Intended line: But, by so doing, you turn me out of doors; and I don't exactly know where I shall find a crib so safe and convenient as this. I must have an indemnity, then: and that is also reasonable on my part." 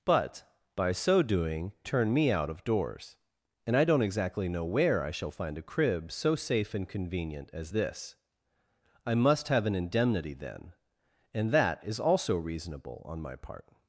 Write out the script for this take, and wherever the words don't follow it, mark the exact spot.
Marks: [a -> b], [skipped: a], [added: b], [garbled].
But, by so doing, [skipped: you] turn me out of doors; and I don't exactly know where I shall find a crib so safe and convenient as this. I must have an indemnity, then: and that is also reasonable on my part."